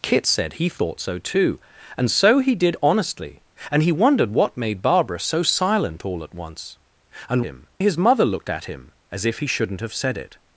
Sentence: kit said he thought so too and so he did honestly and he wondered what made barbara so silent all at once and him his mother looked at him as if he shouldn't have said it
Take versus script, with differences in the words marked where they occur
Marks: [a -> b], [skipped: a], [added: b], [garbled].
kit said he thought so too and so he did honestly and he wondered what made barbara so silent all at once and him his mother looked at him as if he shouldn't have said it